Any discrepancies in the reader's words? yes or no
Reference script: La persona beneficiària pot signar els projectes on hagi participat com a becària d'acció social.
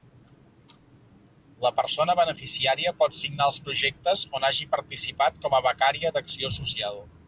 no